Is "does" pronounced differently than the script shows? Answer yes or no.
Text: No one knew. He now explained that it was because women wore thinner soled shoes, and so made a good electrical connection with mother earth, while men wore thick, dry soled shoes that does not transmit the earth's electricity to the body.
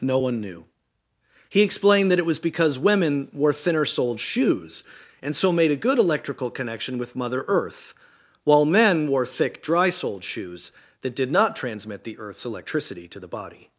yes